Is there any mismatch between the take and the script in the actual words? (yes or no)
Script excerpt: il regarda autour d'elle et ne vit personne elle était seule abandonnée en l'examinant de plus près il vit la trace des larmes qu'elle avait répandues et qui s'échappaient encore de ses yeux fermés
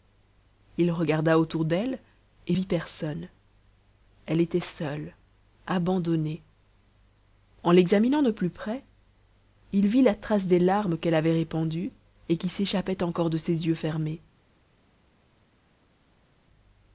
yes